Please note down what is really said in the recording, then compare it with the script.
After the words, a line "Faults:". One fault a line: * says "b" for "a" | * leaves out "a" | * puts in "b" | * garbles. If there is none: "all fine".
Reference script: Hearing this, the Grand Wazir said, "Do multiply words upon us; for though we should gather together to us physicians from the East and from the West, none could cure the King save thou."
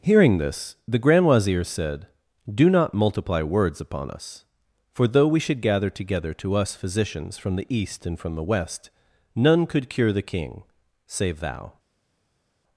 Hearing this, the Grand Wazir said, "Do not multiply words upon us; for though we should gather together to us physicians from the East and from the West, none could cure the King save thou."
Faults:
* puts in "not"